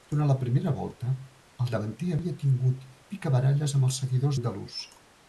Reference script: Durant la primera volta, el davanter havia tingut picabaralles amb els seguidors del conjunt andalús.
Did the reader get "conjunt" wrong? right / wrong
wrong